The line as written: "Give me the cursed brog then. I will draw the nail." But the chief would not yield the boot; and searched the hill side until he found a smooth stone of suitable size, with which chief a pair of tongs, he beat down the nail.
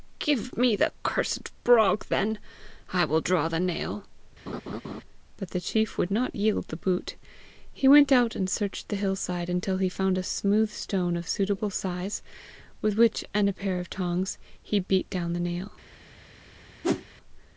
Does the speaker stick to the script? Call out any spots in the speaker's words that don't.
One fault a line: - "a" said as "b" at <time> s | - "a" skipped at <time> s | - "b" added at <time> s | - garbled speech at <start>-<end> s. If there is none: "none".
- "he went out" added at 7.7 s
- "chief" said as "and" at 13.3 s